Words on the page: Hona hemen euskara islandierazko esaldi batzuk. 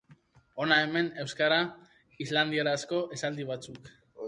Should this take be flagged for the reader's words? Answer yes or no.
no